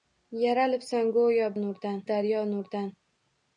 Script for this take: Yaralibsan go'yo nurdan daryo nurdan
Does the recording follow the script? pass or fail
pass